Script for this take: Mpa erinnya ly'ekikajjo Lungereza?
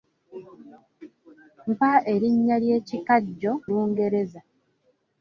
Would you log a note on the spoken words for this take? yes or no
no